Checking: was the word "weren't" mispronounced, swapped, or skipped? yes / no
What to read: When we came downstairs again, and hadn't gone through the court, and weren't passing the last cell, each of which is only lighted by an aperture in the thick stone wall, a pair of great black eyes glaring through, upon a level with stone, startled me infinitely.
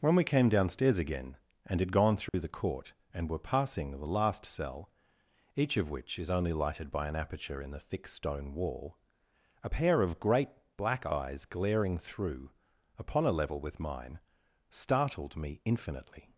yes